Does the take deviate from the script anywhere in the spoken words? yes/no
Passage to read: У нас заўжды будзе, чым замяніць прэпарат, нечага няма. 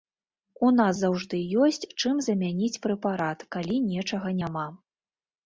yes